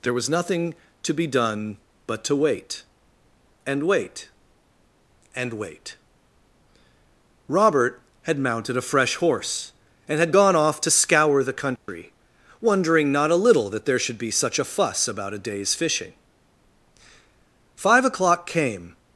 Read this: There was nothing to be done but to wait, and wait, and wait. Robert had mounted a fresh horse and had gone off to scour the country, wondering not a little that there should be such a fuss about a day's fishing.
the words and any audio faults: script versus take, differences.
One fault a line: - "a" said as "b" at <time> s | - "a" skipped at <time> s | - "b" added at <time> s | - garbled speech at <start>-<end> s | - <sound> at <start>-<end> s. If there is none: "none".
- dropout at 11.8-11.9 s
- "Five o'clock came" added at 17.7 s